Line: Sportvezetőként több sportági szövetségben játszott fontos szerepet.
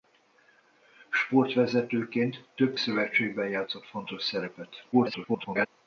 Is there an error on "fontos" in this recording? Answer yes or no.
no